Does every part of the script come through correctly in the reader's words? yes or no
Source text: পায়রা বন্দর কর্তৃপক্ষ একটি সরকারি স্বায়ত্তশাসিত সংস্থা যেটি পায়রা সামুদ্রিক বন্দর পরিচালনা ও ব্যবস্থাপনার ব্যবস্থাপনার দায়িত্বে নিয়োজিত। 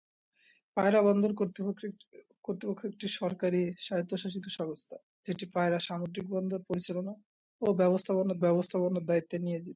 yes